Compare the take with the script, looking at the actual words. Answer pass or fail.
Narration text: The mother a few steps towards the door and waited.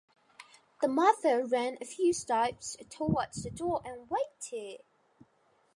fail